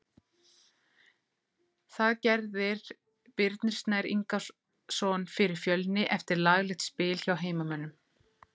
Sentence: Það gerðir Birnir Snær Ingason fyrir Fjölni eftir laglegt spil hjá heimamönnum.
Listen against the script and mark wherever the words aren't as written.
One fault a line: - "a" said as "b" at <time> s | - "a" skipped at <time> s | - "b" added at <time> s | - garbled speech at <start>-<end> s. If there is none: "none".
none